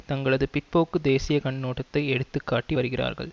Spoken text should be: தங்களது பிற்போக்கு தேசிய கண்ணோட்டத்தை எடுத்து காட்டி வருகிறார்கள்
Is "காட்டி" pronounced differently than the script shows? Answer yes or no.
no